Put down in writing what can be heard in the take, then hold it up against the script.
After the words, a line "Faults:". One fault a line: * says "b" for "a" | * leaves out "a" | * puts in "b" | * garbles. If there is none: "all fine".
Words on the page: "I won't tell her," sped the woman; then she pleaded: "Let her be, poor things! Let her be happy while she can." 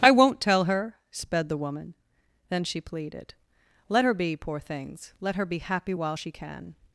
"I won't tell her," sped the woman; then she pleaded: "Let her be, poor things! Let her be happy while she can."
Faults:
all fine